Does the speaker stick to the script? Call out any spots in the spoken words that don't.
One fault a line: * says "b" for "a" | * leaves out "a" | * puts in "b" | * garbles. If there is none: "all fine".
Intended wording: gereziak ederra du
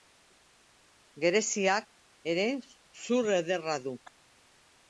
* puts in "ere zur"